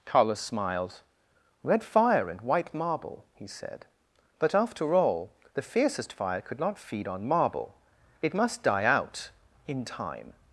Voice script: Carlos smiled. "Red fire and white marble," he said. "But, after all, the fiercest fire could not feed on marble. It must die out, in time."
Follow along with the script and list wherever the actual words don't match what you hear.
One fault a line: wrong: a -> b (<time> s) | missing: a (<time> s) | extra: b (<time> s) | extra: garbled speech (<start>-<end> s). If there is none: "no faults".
no faults